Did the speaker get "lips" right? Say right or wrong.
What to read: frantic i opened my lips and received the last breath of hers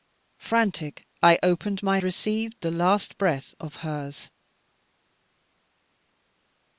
wrong